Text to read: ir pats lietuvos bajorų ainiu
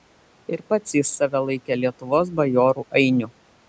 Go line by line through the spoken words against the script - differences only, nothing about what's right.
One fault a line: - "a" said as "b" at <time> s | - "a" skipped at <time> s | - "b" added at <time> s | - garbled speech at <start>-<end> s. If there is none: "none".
- "jis save laikė" added at 1.0 s